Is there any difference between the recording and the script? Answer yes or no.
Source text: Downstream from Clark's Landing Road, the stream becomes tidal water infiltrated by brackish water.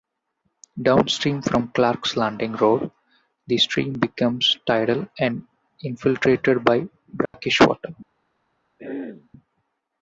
yes